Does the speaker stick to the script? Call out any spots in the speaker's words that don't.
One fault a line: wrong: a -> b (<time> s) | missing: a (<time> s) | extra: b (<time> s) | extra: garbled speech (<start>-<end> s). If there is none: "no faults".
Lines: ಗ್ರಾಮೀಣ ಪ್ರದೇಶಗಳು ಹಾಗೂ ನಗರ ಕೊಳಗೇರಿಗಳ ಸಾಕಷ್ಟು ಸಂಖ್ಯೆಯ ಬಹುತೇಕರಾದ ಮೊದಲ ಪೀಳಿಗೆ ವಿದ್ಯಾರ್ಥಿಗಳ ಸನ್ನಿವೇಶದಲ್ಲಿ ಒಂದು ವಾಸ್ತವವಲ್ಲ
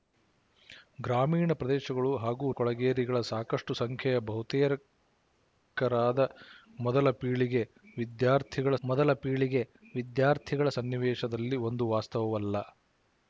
missing: ನಗರ (2.5 s)
extra: ಮೊದಲ ಪೀಳಿಗೆ ವಿದ್ಯಾರ್ಥಿಗಳ (8.8 s)